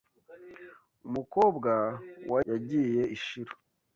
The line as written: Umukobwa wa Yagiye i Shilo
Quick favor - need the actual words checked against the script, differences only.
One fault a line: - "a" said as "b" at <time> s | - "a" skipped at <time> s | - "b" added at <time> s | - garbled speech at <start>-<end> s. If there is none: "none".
none